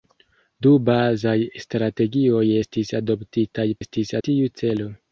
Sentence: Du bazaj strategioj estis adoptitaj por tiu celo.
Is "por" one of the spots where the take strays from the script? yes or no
yes